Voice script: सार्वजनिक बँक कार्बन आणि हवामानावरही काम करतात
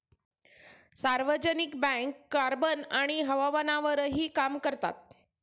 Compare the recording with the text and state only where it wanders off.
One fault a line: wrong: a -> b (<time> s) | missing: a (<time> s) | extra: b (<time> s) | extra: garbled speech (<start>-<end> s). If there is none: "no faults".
no faults